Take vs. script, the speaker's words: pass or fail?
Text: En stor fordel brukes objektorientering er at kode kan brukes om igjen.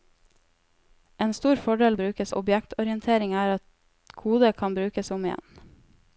pass